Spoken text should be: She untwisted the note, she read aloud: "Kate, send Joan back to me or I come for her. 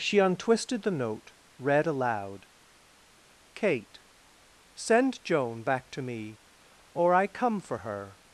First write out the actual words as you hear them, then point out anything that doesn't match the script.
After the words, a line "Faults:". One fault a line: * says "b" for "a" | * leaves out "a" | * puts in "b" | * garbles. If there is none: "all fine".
She untwisted the note, read aloud: "Kate, send Joan back to me or I come for her.
Faults:
* leaves out "she"